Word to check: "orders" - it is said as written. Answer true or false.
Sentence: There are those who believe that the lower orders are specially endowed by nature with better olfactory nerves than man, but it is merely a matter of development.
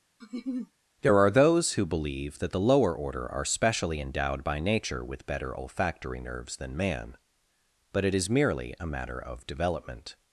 false